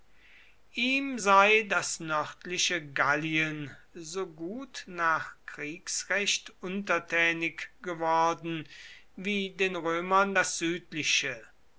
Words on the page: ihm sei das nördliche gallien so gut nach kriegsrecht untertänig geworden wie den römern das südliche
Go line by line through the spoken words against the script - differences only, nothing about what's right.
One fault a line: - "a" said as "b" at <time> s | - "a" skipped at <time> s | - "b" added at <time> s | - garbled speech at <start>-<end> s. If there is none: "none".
none